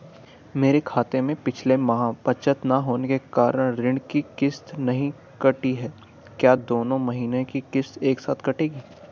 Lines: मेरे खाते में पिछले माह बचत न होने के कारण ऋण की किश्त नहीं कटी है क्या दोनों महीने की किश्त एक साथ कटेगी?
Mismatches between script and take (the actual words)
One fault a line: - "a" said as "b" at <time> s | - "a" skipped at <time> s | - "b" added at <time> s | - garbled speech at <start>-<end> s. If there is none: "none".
none